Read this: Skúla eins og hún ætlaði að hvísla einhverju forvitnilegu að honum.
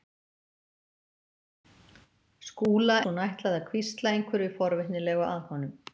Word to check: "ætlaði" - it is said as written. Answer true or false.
true